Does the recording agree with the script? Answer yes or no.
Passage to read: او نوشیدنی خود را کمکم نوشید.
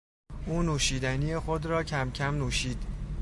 yes